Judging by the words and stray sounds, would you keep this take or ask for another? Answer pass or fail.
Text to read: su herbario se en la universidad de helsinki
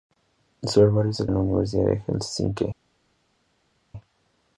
pass